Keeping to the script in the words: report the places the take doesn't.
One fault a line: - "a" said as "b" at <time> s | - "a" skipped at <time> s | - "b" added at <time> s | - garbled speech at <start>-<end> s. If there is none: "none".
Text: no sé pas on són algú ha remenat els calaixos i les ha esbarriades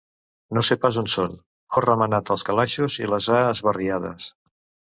- "algú" skipped at 1.4 s